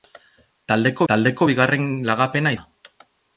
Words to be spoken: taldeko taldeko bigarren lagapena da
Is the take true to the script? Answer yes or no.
yes